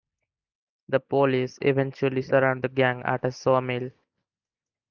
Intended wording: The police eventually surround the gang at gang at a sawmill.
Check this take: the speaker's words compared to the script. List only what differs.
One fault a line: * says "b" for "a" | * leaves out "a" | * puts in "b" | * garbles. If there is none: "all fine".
* leaves out "gang at"